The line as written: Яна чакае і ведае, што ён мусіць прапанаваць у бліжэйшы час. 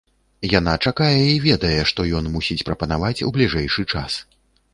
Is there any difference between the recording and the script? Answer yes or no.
no